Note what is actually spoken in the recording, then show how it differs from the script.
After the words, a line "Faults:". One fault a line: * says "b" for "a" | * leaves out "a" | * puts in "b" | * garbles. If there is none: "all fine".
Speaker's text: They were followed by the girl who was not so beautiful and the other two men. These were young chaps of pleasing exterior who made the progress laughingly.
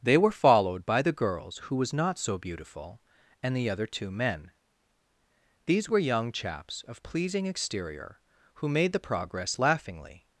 They were followed by the girls who was not so beautiful and the other two men. These were young chaps of pleasing exterior who made the progress laughingly.
Faults:
* says "girls" for "girl"